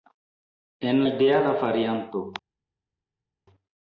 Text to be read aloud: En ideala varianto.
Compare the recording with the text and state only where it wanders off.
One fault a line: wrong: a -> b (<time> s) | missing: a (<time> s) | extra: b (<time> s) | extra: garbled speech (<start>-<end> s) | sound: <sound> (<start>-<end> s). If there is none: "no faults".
no faults